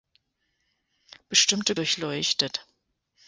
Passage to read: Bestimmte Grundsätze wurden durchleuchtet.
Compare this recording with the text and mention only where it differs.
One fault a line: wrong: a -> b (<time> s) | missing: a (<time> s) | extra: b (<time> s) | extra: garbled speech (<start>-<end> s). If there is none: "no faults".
missing: Grundsätze wurden (1.8 s)